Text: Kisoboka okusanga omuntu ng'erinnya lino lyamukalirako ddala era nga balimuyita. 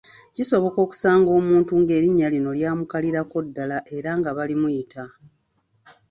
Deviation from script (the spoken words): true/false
false